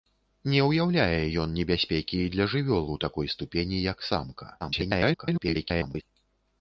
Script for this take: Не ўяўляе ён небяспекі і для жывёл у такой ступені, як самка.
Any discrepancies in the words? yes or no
yes